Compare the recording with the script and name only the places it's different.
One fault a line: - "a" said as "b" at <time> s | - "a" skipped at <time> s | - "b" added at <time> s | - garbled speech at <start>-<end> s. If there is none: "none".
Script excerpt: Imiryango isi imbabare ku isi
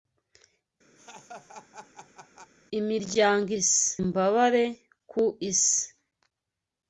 none